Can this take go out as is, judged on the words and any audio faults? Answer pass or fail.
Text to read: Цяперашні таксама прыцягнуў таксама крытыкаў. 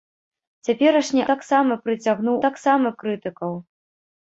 pass